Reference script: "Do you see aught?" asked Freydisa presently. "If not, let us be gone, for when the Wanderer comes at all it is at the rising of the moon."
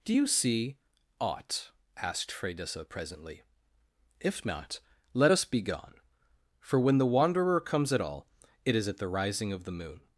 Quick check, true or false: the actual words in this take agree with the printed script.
true